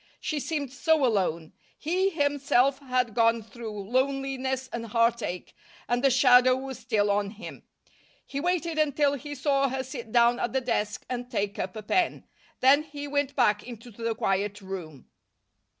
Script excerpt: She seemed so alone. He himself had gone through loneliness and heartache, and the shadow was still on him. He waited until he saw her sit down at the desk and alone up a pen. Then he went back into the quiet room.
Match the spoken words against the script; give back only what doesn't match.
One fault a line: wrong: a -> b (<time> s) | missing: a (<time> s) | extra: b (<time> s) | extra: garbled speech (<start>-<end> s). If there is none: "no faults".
wrong: alone -> take (11.3 s)